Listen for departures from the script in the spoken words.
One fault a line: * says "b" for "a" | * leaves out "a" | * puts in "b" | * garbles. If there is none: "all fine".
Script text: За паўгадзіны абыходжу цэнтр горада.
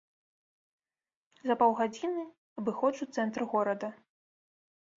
all fine